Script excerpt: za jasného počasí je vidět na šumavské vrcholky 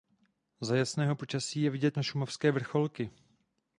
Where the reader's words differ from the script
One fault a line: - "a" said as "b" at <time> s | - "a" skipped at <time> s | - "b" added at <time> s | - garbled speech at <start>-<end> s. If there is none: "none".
none